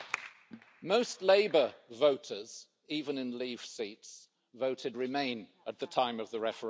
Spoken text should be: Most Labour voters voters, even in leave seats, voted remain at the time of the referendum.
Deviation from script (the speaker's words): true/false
true